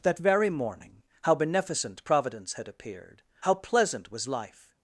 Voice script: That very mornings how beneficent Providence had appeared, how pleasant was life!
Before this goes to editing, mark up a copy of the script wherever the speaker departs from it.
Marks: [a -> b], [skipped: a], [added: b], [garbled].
That very [mornings -> morning] how beneficent Providence had appeared, how pleasant was life!